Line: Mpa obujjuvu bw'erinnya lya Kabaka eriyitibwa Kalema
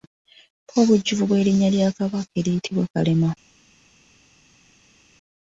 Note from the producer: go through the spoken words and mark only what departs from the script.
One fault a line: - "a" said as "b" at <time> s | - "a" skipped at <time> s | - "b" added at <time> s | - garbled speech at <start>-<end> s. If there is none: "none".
none